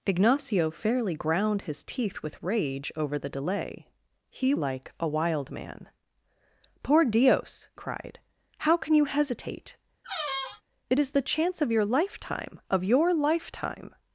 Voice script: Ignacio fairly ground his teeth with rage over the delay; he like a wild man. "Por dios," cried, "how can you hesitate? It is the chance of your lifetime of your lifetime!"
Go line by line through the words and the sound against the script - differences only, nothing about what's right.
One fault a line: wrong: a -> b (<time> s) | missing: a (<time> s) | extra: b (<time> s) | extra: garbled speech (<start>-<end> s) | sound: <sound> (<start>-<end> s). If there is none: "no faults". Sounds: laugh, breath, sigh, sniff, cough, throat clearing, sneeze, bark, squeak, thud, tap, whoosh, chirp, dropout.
sound: squeak (10.0-10.6 s)